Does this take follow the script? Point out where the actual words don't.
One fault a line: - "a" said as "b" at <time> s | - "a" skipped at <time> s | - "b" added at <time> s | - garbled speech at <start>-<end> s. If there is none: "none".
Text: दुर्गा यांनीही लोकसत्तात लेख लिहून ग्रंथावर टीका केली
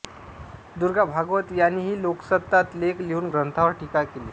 - "भागवत" added at 1.1 s